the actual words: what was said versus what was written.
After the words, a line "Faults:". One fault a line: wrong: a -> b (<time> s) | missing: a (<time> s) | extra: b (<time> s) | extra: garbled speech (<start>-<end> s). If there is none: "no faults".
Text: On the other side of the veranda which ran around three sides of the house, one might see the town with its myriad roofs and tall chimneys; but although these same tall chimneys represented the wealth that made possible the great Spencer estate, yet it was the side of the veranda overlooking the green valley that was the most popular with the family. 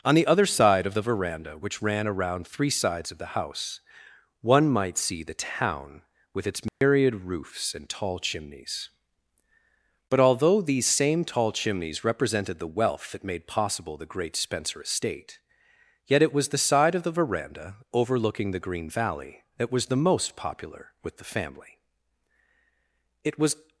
On the other side of the veranda which ran around three sides of the house, one might see the town with its myriad roofs and tall chimneys; but although these same tall chimneys represented the wealth that made possible the great Spencer estate, yet it was the side of the veranda overlooking the green valley that was the most popular with the family. It was
Faults:
extra: It was (23.2 s)